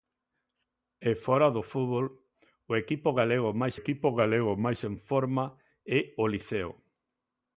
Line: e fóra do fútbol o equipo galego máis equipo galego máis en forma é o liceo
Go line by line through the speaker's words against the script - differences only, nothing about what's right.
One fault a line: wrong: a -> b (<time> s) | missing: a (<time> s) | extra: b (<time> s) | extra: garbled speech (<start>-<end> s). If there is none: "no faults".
no faults